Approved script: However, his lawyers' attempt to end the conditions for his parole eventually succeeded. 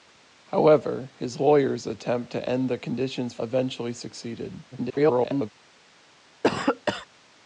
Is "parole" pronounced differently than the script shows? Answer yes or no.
yes